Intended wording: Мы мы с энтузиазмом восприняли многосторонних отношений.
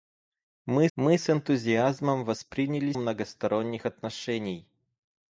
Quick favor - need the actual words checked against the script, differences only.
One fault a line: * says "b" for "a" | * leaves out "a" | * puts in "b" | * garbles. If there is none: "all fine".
all fine